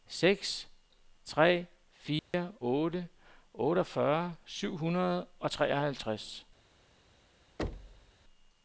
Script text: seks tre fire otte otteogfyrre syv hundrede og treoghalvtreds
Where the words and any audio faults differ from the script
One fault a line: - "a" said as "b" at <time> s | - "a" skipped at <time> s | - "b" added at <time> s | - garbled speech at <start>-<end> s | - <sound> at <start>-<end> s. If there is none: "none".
- dropout at 2.2-2.3 s
- thud at 7.6-8.1 s